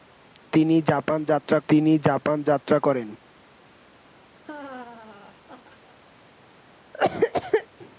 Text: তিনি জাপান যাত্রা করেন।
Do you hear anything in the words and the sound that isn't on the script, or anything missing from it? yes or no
yes